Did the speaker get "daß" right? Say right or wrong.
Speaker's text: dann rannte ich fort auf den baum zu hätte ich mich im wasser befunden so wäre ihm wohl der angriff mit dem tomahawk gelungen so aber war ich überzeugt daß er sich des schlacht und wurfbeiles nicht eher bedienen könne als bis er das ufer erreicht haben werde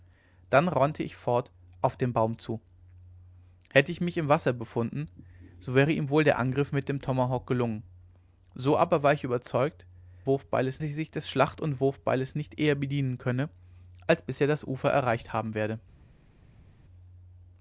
wrong